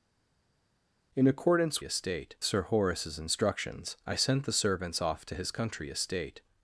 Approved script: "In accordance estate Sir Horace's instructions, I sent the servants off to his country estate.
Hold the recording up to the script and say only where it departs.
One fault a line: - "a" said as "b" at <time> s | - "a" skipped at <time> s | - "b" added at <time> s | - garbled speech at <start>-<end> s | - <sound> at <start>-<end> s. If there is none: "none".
none